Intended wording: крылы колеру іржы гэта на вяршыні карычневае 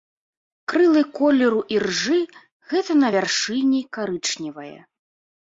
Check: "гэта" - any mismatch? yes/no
no